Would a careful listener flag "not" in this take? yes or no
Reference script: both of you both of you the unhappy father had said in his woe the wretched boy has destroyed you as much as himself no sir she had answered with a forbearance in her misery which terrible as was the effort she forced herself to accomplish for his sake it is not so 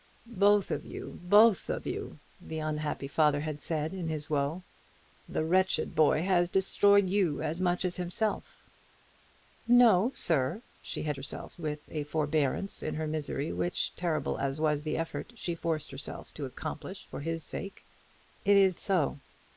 yes